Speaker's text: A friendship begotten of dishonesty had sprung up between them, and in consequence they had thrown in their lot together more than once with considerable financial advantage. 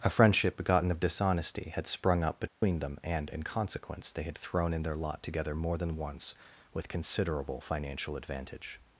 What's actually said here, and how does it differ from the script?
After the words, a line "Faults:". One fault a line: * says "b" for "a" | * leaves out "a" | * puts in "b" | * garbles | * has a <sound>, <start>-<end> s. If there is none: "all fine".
A friendship begotten of dishonesty had sprung up between them, and in consequence they had thrown in their lot together more than once with considerable financial advantage.
Faults:
* has a dropout, 2.5-2.6 s